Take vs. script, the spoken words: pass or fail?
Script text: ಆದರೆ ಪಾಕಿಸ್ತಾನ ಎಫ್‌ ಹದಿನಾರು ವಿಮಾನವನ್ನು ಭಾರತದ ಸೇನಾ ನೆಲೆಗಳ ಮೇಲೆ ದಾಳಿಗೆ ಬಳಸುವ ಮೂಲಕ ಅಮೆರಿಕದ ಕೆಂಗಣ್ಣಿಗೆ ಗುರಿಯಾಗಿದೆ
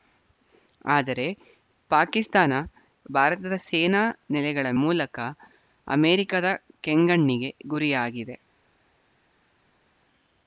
fail